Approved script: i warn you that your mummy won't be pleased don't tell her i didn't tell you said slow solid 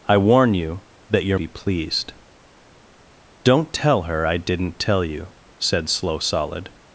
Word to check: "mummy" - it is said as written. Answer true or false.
false